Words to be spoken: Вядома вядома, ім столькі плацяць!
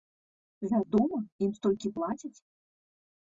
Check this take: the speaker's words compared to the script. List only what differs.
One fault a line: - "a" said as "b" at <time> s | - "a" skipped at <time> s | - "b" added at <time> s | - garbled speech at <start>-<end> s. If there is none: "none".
- "вядома" skipped at 1.2 s